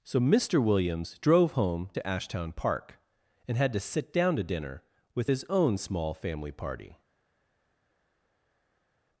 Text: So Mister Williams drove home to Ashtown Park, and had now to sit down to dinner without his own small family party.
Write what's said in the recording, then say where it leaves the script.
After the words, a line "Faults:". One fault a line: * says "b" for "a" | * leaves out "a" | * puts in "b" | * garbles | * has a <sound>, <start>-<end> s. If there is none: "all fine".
So Mister Williams drove home to Ashtown Park, and had to sit down to dinner with his own small family party.
Faults:
* leaves out "now"
* says "with" for "without"